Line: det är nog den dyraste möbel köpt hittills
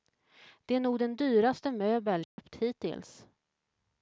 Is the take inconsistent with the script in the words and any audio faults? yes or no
yes